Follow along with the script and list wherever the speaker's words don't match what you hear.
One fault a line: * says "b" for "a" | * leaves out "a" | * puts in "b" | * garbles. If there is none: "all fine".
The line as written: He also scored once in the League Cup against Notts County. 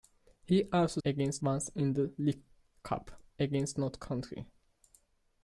* says "against" for "scored"